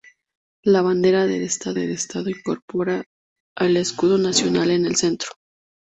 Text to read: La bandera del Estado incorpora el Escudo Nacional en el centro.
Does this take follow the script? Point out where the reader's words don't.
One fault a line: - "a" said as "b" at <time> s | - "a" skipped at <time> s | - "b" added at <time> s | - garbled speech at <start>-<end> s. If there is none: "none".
- "del Estado" added at 1.7 s